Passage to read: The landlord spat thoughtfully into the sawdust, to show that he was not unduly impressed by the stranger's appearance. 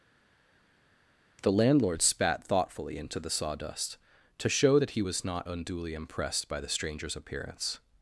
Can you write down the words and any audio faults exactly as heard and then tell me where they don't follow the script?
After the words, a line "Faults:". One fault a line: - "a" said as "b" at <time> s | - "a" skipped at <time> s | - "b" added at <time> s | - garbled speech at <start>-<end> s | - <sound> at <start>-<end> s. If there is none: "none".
The landlord spat thoughtfully into the sawdust, to show that he was not unduly impressed by the stranger's appearance.
Faults:
none